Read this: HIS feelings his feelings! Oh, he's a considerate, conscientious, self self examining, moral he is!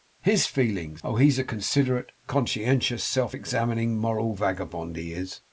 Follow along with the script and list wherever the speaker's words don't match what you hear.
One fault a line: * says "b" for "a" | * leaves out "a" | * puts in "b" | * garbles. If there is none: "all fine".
* leaves out "his feelings"
* leaves out "self"
* puts in "vagabond"